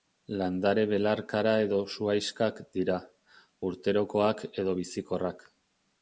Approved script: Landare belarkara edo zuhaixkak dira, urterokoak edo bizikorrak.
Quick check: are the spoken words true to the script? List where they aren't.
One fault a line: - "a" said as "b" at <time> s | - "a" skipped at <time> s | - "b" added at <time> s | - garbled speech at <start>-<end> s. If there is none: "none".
none